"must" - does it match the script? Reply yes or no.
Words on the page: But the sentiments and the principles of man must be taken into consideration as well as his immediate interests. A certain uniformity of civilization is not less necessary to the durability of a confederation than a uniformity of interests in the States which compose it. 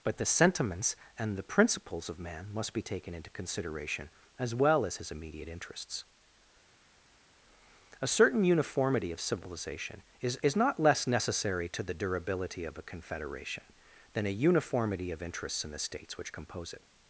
yes